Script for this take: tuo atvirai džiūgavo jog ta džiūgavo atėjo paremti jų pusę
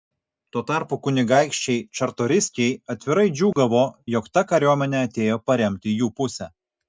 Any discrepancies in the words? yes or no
yes